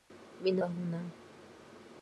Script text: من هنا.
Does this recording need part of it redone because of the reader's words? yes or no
no